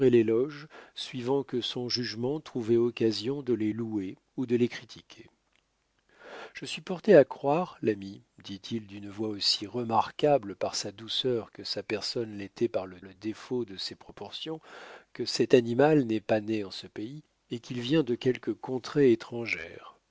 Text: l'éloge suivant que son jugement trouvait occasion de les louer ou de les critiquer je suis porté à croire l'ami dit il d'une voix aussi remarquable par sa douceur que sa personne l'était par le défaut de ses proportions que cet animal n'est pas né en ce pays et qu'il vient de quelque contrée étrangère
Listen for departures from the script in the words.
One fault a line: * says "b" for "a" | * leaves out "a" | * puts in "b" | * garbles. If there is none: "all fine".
* puts in "le"